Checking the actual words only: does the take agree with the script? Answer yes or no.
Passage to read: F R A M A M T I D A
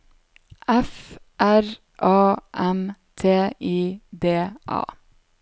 no